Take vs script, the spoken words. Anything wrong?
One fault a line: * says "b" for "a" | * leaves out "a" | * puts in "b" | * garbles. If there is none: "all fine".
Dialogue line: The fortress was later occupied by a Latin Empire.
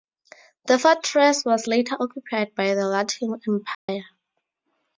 * says "the" for "a"